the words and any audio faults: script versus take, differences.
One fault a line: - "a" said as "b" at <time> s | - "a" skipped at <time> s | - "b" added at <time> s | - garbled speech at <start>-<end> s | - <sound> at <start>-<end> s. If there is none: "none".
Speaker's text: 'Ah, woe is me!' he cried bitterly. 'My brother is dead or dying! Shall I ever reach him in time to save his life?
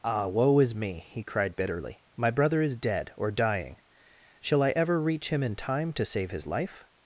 none